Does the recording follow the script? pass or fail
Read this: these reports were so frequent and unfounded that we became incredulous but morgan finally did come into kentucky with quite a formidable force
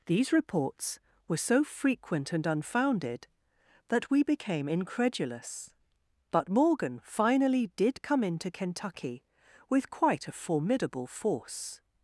pass